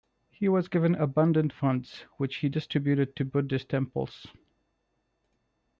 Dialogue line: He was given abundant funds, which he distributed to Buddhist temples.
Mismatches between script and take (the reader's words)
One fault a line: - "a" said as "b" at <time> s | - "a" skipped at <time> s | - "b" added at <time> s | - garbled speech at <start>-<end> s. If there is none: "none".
none